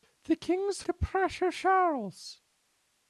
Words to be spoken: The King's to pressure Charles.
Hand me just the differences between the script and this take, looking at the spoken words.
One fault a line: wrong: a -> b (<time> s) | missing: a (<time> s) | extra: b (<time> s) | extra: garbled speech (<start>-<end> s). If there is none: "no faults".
no faults